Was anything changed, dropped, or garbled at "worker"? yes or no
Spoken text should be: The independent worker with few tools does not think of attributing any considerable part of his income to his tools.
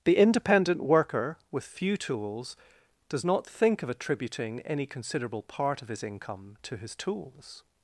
no